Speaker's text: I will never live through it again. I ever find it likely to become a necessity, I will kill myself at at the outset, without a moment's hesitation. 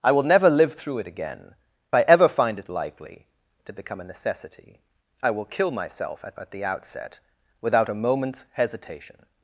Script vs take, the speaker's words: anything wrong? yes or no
no